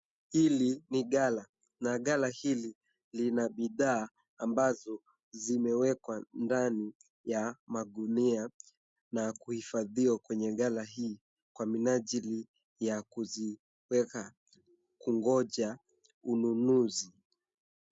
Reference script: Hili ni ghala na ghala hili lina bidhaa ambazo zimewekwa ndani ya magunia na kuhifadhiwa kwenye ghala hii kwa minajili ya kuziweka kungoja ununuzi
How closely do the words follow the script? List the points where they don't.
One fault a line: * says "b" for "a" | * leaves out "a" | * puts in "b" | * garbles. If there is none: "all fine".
all fine